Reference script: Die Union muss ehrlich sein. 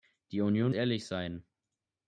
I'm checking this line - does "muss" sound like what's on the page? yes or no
no